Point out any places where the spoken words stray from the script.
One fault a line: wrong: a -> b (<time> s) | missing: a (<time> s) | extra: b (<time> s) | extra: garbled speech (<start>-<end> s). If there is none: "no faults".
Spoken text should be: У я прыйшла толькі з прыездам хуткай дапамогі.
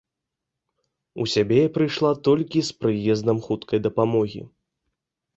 extra: сябе (1.3 s)